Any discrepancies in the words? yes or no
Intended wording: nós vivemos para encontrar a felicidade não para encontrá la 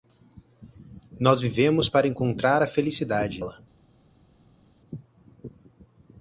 yes